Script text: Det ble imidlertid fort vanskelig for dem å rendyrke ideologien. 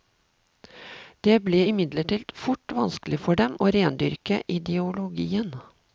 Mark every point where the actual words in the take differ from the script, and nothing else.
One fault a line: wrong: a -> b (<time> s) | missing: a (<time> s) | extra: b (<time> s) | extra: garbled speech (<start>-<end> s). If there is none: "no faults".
no faults